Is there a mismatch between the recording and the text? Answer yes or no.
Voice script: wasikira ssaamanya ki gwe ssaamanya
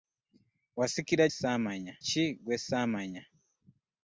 no